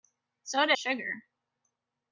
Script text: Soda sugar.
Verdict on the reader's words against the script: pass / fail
pass